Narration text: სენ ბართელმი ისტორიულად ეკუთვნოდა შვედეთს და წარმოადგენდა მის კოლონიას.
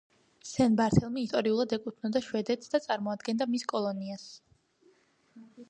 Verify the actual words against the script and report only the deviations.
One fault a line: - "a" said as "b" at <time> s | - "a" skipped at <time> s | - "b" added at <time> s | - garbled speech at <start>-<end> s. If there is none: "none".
none